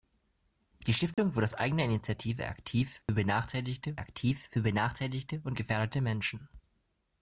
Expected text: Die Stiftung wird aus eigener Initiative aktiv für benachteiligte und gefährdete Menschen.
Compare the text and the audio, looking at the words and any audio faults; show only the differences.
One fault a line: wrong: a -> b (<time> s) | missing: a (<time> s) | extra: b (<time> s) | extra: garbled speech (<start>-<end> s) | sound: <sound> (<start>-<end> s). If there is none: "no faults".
sound: dropout (1.1-1.2 s)
sound: dropout (3.0-3.1 s)
extra: aktiv für benachteiligte (4.0 s)